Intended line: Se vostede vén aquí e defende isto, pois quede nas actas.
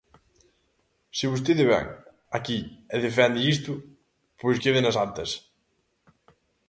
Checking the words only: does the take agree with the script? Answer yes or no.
yes